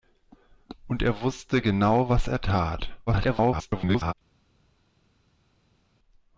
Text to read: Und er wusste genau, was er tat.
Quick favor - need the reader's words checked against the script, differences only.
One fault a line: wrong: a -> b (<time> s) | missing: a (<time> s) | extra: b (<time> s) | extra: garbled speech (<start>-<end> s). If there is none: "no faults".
extra: garbled speech (3.1-4.1 s)